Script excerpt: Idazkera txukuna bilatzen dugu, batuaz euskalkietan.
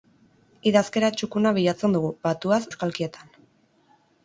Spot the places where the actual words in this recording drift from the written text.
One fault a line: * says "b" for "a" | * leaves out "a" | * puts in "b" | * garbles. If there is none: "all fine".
all fine